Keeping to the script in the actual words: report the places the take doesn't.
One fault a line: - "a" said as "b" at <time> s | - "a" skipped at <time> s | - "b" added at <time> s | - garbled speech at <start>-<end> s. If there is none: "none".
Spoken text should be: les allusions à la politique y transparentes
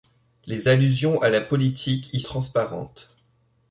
none